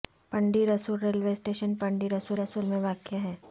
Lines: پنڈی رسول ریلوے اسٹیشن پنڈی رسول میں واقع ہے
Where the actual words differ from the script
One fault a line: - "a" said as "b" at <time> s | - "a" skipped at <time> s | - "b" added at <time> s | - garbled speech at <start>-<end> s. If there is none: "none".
- "رسول" added at 2.4 s